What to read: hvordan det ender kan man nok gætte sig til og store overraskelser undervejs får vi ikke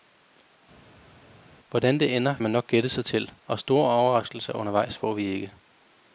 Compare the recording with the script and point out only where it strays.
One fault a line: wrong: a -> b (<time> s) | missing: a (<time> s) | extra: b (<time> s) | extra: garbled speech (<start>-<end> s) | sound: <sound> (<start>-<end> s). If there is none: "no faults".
missing: kan (2.4 s)